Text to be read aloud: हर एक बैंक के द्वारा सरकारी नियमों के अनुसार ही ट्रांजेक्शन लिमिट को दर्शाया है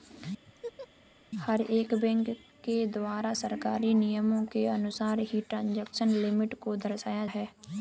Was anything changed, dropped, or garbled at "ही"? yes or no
no